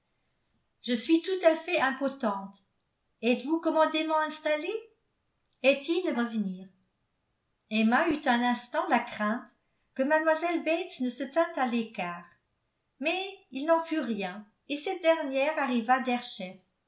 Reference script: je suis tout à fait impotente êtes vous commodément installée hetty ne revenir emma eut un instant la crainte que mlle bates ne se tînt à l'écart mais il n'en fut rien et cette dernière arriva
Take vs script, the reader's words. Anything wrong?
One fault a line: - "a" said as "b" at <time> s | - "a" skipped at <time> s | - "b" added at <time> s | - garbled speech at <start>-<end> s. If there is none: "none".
none